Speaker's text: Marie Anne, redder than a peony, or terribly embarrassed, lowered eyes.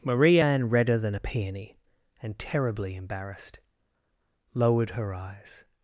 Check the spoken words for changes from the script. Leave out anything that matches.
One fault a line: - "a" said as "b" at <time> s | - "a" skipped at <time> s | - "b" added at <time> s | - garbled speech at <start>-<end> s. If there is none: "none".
- "or" said as "and" at 2.2 s
- "her" added at 4.9 s